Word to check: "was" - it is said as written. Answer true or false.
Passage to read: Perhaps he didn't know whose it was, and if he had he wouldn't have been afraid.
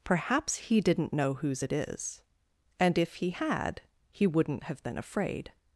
false